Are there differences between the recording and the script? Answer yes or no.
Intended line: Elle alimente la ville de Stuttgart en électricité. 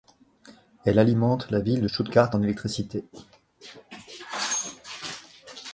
no